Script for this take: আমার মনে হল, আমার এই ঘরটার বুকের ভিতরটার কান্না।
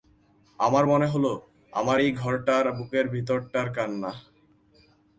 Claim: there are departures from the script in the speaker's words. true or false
false